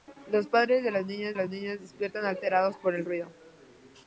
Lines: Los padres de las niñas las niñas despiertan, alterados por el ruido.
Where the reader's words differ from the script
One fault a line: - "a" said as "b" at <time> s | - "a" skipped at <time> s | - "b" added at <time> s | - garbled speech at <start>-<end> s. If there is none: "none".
none